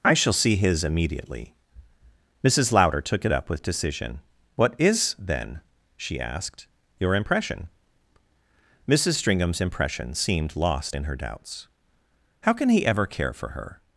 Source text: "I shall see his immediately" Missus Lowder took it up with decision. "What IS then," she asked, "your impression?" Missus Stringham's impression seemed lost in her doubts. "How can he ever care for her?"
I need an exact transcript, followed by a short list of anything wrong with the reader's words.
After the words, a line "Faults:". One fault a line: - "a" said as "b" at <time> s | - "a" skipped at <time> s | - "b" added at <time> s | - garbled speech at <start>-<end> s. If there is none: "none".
"I shall see his immediately" Missus Lowder took it up with decision. "What IS then," she asked, "your impression?" Missus Stringham's impression seemed lost in her doubts. "How can he ever care for her?"
Faults:
none